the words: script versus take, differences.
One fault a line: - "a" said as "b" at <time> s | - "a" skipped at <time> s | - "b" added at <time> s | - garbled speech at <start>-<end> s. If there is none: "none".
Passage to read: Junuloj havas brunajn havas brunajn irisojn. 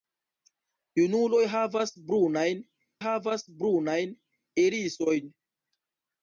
none